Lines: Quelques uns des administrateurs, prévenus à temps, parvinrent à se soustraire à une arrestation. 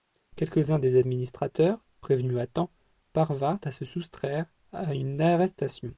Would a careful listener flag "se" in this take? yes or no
no